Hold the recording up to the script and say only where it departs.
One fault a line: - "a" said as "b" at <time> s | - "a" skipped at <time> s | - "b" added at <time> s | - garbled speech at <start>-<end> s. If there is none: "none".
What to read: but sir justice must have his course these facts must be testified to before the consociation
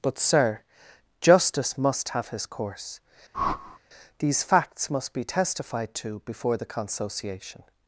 none